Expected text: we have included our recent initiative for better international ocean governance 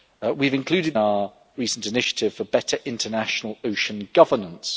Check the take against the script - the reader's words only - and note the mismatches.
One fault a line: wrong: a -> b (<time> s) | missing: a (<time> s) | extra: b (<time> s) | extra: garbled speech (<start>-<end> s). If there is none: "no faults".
no faults